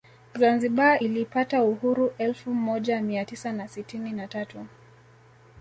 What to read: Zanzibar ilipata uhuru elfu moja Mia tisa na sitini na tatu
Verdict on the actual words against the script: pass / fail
pass